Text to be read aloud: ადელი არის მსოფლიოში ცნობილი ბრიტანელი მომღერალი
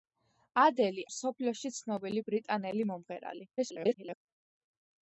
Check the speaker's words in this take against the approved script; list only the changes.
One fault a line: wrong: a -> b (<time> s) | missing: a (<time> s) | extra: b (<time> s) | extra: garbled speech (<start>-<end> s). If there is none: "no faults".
missing: არის (1.0 s)
extra: garbled speech (3.6-4.2 s)